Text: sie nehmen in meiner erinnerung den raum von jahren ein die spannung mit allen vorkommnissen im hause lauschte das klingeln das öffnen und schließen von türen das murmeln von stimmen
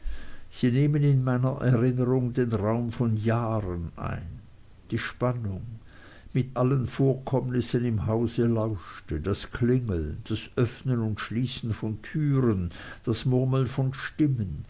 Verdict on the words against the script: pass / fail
pass